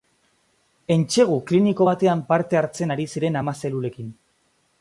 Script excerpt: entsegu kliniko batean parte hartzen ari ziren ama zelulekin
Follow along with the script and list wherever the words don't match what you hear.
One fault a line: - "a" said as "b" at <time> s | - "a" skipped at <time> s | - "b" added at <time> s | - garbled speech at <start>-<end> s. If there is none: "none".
none